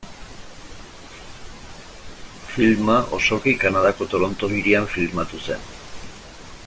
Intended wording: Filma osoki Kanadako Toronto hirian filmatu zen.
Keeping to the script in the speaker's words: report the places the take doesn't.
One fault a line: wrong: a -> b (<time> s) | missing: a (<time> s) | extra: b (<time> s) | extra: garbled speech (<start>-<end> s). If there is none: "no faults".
no faults